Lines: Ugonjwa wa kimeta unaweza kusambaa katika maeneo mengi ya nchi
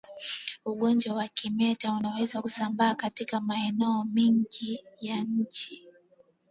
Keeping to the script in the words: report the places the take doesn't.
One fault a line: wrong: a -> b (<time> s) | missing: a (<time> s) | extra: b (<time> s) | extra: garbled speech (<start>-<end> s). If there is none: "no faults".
no faults